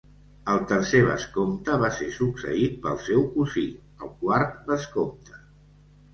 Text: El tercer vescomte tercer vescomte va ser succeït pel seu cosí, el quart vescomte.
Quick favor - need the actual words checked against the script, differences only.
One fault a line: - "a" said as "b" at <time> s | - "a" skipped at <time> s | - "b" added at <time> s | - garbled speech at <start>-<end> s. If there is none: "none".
- "tercer vescomte" skipped at 1.8 s